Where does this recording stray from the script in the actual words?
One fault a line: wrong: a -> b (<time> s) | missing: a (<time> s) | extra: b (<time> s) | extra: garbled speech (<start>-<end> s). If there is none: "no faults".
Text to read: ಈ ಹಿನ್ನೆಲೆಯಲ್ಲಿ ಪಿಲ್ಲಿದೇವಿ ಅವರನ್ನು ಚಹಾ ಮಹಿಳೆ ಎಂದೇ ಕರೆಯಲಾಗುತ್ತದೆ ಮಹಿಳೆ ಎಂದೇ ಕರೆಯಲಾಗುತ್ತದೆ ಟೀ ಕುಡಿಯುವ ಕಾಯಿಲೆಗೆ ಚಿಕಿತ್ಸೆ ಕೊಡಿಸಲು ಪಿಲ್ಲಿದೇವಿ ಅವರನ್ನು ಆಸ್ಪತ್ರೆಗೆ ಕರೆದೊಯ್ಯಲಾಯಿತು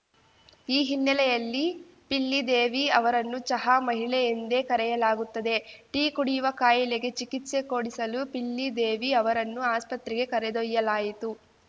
missing: ಮಹಿಳೆ ಎಂದೇ ಕರೆಯಲಾಗುತ್ತದೆ (5.5 s)